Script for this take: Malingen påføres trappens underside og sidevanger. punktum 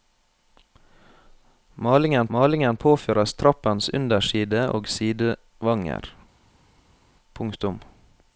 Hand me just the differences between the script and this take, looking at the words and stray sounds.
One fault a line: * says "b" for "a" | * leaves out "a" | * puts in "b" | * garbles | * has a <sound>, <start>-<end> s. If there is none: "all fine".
* puts in "malingen"